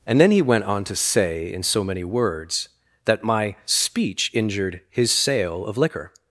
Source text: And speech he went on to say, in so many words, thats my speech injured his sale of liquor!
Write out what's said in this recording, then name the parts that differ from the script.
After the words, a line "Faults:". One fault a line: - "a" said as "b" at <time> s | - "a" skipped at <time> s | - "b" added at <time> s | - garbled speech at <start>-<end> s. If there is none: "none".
And then he went on to say, in so many words, that my speech injured his sale of liquor!
Faults:
- "speech" said as "then" at 0.2 s
- "thats" said as "that" at 3.0 s